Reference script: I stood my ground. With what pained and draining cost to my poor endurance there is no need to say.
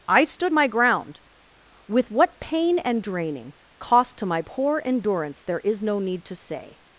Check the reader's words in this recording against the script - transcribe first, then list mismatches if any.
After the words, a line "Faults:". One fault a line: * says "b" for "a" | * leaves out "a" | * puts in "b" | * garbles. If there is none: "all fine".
I stood my ground. With what pain and draining cost to my poor endurance there is no need to say.
Faults:
* says "pain" for "pained"